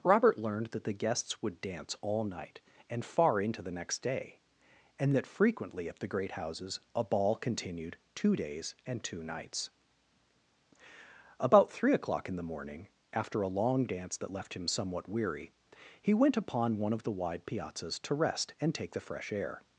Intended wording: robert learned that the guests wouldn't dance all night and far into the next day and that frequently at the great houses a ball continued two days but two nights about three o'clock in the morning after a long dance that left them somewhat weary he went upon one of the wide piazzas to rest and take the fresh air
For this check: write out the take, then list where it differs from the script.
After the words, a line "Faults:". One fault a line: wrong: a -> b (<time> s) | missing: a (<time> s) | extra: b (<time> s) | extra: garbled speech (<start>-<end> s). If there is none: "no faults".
robert learned that the guests would dance all night and far into the next day and that frequently at the great houses a ball continued two days and two nights about three o'clock in the morning after a long dance that left him somewhat weary he went upon one of the wide piazzas to rest and take the fresh air
Faults:
wrong: wouldn't -> would (1.4 s)
wrong: but -> and (8.8 s)
wrong: them -> him (14.5 s)